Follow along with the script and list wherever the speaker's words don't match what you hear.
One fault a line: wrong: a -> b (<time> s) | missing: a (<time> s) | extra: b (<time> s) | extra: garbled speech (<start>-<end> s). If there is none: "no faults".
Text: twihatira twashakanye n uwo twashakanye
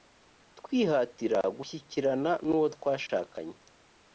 wrong: twashakanye -> gushyikirana (1.6 s)